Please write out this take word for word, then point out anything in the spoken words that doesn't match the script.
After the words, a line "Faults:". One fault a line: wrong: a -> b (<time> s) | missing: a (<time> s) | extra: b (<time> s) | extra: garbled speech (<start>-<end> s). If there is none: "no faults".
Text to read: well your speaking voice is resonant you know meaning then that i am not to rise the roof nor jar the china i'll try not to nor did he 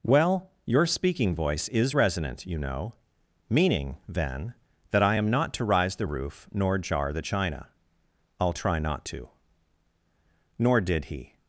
well your speaking voice is resonant you know meaning then that i am not to rise the roof nor jar the china i'll try not to nor did he
Faults:
no faults